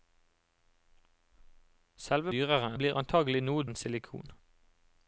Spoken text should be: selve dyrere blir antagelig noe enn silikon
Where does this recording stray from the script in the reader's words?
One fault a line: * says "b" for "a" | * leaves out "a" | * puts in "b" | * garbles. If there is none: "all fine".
all fine